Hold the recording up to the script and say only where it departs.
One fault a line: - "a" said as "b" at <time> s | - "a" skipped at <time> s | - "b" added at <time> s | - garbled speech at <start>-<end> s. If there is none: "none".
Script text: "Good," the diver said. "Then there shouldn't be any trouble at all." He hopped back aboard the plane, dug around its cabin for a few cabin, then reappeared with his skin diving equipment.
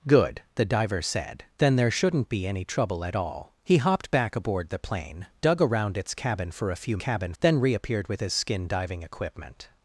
none